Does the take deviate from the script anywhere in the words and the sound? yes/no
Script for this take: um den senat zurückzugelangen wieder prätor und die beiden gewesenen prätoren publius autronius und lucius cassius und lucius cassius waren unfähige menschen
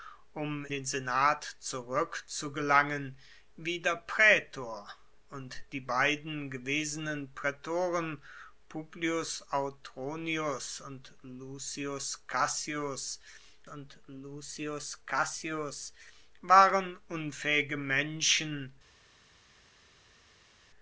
no